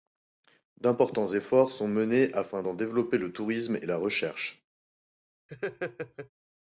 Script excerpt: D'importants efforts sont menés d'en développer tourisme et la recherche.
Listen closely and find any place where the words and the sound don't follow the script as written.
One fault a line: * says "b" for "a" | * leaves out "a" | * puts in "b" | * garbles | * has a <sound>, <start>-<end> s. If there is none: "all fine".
* puts in "afin"
* puts in "le"
* has a laugh, 5.5-6.3 s